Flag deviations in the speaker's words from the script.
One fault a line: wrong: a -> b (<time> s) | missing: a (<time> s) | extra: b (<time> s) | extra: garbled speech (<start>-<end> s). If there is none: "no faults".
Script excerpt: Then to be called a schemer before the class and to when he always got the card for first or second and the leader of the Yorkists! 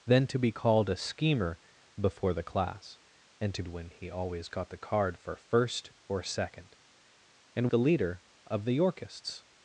no faults